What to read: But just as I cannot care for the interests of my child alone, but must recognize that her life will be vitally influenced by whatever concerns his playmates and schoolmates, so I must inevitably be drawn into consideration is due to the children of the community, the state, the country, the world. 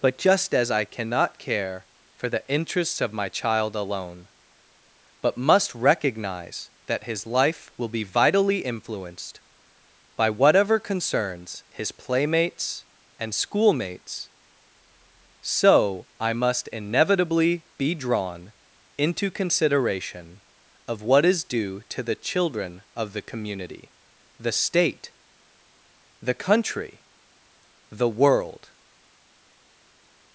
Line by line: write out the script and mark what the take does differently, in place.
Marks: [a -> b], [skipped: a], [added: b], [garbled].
But just as I cannot care for the interests of my child alone, but must recognize that [her -> his] life will be vitally influenced by whatever concerns his playmates and schoolmates, so I must inevitably be drawn into consideration [added: of what] is due to the children of the community, the state, the country, the world.